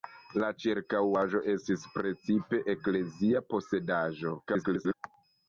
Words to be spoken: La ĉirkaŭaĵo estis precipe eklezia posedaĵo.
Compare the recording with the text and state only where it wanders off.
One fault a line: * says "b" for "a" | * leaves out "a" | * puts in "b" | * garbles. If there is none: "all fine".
* garbles